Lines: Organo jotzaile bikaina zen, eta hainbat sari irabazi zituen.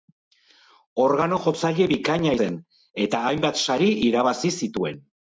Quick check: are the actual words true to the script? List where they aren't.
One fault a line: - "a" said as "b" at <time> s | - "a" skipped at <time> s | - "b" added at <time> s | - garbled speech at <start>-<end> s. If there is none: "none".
none